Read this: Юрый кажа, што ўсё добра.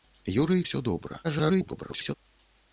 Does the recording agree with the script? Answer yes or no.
no